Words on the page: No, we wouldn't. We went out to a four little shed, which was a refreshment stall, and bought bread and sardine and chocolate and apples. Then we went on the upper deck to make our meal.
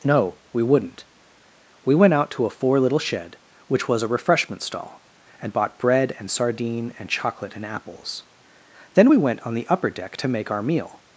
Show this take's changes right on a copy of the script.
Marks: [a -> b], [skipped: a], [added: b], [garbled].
No, we wouldn't. We went out to a four little shed, which was a refreshment stall, and bought bread and sardine and chocolate and apples. Then we went on the upper deck to make our meal.